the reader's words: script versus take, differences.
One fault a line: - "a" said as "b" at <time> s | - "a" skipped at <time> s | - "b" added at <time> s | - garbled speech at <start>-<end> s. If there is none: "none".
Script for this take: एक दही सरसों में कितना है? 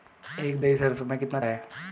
none